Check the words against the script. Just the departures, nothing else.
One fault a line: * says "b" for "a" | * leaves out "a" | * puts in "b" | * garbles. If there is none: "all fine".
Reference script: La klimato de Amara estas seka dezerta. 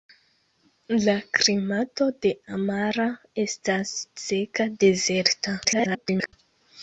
* garbles